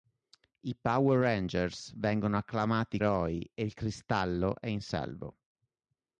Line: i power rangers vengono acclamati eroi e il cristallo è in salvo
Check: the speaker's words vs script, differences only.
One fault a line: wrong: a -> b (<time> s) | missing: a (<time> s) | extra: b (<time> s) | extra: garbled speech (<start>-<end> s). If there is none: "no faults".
no faults